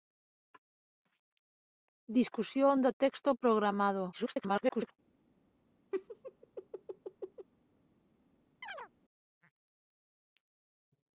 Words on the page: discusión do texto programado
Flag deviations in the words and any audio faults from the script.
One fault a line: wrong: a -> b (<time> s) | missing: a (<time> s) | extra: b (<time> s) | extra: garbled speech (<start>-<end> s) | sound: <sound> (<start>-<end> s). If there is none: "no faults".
extra: garbled speech (4.1-4.9 s)
sound: laugh (5.9-7.5 s)
sound: chirp (8.6-8.9 s)